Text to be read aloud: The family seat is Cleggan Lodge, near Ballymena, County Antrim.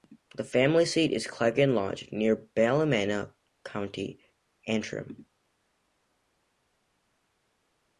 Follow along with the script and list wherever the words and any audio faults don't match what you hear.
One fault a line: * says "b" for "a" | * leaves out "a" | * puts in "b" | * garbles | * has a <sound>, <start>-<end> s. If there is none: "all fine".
all fine